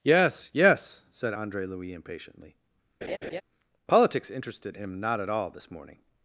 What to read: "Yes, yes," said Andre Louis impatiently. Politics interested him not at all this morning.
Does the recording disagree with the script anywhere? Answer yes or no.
no